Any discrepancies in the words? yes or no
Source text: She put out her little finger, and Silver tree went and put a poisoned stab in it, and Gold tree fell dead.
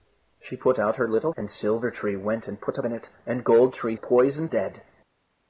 yes